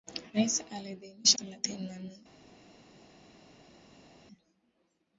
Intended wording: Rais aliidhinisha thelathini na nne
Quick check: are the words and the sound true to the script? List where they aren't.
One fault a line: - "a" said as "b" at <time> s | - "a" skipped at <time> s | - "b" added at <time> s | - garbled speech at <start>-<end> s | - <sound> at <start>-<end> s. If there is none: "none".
none